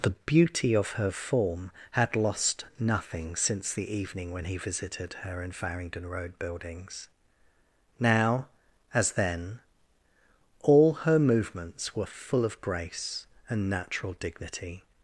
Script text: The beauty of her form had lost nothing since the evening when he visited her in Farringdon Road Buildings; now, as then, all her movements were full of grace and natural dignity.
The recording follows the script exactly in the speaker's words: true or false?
true